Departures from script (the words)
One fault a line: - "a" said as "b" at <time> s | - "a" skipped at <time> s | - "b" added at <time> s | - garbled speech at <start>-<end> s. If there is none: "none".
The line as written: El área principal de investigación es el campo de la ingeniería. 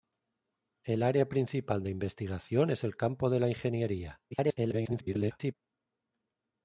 - garbled speech at 4.3-5.5 s